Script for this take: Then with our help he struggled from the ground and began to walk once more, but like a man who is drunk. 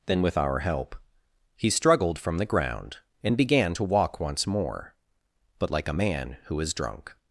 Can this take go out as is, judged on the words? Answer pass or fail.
pass